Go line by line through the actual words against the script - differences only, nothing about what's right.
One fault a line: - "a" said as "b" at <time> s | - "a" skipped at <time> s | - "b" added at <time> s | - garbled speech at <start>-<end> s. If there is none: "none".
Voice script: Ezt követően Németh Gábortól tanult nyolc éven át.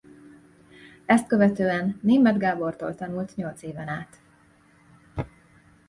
none